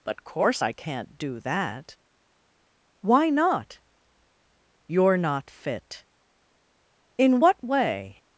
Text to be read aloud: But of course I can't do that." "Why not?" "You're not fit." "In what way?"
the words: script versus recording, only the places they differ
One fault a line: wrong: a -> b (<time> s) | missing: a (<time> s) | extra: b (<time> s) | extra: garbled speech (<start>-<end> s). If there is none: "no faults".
missing: of (0.2 s)